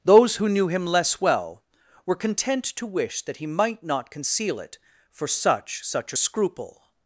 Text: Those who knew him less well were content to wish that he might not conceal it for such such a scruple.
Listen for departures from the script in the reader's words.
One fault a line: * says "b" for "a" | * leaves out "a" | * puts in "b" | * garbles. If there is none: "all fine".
all fine